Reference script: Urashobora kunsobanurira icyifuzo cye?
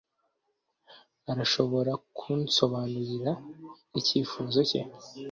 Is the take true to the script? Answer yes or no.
yes